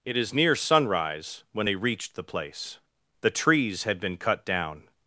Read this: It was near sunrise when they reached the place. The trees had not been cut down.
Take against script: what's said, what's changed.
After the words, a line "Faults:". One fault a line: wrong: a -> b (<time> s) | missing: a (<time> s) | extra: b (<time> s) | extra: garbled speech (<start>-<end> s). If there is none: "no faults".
It is near sunrise when they reached the place. The trees had been cut down.
Faults:
wrong: was -> is (0.2 s)
missing: not (4.0 s)